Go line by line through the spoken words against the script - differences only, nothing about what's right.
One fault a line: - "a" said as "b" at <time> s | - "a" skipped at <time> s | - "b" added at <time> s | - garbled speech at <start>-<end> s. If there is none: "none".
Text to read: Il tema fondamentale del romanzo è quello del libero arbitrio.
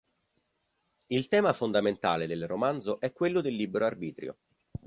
none